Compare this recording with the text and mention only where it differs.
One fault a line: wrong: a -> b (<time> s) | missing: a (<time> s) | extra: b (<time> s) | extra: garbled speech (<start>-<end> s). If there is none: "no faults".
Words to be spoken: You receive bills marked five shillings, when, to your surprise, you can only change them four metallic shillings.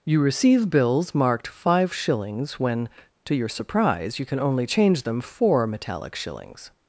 no faults